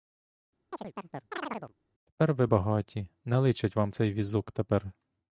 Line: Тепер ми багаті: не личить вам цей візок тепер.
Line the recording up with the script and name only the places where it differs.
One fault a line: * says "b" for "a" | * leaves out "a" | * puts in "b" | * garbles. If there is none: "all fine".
* says "ви" for "ми"